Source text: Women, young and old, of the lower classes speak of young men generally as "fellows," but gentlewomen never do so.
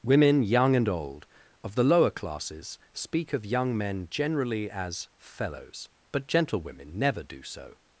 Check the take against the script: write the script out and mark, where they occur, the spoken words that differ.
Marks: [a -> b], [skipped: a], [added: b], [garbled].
Women, young and old, of the lower classes speak of young men generally as "fellows," but gentlewomen never do so.